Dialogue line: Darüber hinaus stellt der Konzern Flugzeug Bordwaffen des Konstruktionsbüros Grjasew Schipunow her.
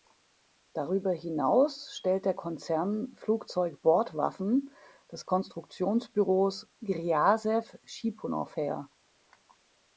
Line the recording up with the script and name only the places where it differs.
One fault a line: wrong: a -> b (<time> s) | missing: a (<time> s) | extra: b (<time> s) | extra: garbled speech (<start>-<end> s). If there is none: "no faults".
no faults